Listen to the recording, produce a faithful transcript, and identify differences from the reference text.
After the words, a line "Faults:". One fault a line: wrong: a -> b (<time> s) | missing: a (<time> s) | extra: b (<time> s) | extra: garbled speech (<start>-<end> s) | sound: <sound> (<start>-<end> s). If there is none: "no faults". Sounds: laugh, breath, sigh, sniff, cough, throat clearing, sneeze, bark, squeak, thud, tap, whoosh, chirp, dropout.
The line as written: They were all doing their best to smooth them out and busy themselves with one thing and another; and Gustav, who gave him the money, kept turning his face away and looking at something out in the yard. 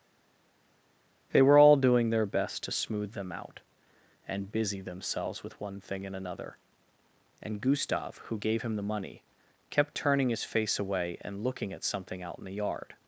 They were all doing their best to smooth them out and busy themselves with one thing and another; and Gustav, who gave him the money, kept turning his face away and looking at something out in the yard.
Faults:
no faults